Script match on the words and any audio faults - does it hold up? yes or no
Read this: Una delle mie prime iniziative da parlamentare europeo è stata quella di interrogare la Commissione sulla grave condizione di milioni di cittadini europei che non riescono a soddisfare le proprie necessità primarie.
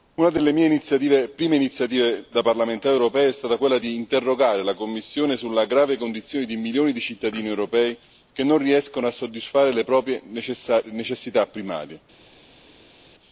yes